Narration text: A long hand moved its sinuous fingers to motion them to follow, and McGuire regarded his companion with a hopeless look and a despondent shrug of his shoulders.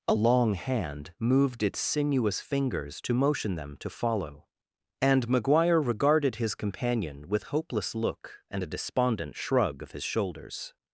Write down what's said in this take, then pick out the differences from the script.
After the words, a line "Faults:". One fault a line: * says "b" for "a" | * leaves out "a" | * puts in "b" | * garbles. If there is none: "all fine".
A long hand moved its sinuous fingers to motion them to follow, and McGuire regarded his companion with hopeless look and a despondent shrug of his shoulders.
Faults:
* leaves out "a"